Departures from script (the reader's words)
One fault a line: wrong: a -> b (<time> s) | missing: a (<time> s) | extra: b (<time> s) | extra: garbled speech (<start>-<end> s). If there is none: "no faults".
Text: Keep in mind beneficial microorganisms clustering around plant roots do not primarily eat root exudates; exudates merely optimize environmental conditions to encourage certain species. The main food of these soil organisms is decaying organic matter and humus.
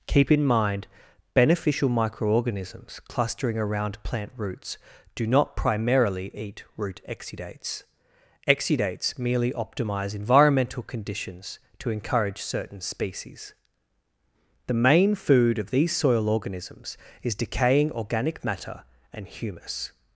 no faults